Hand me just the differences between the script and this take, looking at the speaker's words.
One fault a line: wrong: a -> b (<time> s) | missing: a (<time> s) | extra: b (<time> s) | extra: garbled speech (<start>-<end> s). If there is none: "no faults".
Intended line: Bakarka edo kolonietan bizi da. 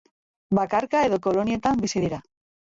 wrong: da -> dira (2.0 s)